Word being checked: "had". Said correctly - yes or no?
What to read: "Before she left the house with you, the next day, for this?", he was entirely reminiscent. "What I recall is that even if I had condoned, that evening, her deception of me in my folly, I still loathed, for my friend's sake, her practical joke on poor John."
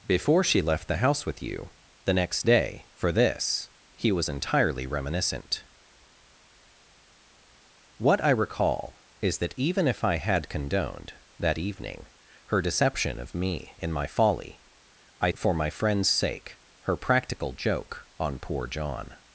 yes